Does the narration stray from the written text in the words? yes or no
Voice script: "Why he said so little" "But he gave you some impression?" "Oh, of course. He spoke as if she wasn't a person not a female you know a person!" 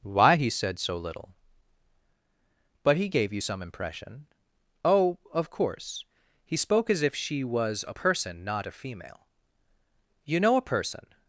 yes